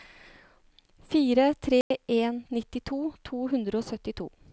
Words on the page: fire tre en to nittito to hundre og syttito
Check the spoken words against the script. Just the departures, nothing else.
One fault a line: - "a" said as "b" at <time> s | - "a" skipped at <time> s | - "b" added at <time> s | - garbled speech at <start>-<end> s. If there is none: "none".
- "to" skipped at 2.4 s